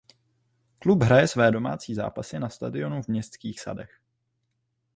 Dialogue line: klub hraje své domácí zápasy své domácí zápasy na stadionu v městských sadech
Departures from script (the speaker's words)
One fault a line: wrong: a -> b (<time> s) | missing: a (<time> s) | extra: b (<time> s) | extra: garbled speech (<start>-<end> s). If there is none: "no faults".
missing: své domácí zápasy (2.4 s)